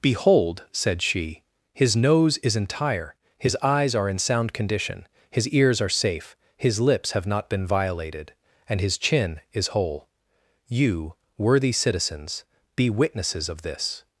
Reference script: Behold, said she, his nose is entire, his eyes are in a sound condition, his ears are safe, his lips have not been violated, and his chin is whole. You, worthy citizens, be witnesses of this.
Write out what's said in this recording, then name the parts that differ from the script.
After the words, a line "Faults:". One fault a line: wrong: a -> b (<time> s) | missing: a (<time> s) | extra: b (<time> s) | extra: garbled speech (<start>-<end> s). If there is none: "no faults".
Behold, said she, his nose is entire, his eyes are in sound condition, his ears are safe, his lips have not been violated, and his chin is whole. You, worthy citizens, be witnesses of this.
Faults:
missing: a (4.2 s)